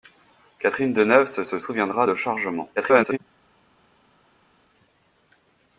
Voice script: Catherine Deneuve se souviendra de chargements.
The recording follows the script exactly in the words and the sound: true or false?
false